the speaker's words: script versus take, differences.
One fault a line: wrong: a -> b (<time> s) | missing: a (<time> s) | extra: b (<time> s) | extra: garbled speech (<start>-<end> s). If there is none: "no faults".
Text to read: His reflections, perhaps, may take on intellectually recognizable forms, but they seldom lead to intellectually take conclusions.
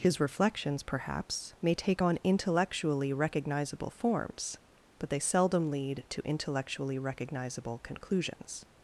wrong: take -> recognizable (7.0 s)